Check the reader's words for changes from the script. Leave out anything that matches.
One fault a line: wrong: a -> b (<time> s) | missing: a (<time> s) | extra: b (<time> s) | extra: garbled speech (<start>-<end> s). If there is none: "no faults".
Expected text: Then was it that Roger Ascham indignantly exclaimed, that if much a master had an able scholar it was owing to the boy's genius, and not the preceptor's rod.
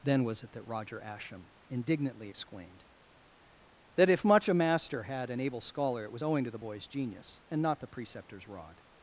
no faults